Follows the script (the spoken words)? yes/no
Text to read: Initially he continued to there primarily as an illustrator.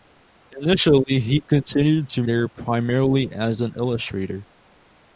yes